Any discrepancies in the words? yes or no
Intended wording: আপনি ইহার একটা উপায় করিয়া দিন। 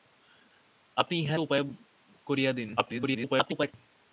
yes